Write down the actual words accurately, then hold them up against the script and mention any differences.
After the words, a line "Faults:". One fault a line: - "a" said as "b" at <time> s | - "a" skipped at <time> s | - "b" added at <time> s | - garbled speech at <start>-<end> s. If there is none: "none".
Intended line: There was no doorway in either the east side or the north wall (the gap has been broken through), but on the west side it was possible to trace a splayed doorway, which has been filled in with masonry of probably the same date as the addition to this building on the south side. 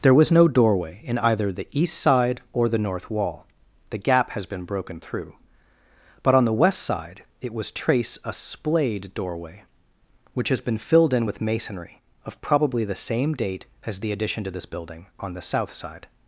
There was no doorway in either the east side or the north wall (the gap has been broken through), but on the west side it was trace a splayed doorway, which has been filled in with masonry of probably the same date as the addition to this building on the south side.
Faults:
- "possible to" skipped at 7.7 s